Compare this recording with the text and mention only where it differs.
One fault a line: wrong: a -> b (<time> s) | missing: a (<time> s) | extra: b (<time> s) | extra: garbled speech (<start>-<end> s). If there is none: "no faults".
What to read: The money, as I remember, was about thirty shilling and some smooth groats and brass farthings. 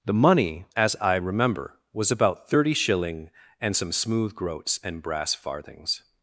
no faults